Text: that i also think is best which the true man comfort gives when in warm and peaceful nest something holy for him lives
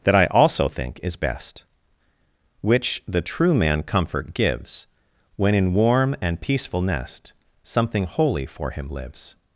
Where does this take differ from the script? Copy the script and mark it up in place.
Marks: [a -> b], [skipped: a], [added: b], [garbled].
that i also think is best which the true man comfort gives when in warm and peaceful nest something holy for him lives